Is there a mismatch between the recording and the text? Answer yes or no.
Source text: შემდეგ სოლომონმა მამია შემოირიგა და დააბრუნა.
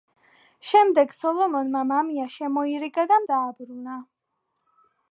no